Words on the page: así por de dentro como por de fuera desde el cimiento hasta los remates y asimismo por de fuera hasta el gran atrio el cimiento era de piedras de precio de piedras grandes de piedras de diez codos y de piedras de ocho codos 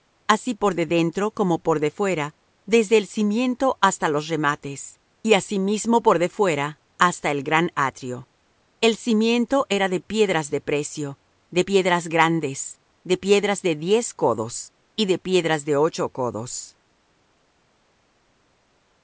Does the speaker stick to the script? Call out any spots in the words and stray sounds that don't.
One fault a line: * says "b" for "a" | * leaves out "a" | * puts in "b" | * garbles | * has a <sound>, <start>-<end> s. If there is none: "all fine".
all fine